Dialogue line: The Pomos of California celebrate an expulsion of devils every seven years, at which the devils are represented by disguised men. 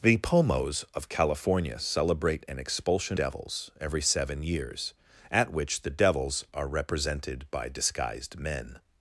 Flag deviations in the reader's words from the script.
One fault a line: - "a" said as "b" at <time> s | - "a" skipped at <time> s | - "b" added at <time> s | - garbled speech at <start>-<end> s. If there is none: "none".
- "of" skipped at 3.2 s